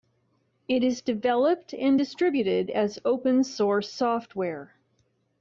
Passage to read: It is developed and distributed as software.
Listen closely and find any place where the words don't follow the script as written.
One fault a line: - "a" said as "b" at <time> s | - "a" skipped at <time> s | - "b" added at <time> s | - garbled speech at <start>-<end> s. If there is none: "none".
- "open source" added at 3.0 s